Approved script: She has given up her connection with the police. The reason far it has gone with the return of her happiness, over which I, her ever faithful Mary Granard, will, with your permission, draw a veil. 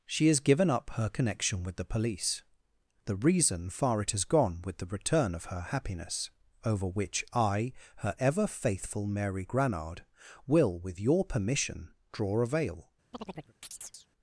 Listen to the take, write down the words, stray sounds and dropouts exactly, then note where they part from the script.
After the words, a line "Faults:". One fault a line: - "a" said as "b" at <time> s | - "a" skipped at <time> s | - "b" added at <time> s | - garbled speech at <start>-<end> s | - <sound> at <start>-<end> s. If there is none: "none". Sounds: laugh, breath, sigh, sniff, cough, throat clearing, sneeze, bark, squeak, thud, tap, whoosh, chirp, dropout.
She has given up her connection with the police. The reason far it has gone with the return of her happiness, over which I, her ever faithful Mary Granard, will, with your permission, draw a veil.
Faults:
- chirp at 13.1-14.1 s